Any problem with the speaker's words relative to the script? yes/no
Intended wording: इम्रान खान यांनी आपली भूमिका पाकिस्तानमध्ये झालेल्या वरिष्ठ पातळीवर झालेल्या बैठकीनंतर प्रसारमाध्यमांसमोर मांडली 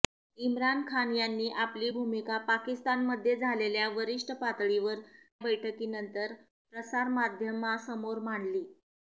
yes